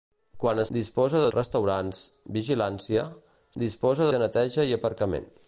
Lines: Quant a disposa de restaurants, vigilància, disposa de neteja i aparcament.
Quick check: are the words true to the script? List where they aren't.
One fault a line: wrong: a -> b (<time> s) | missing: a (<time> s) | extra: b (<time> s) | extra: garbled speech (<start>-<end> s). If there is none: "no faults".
no faults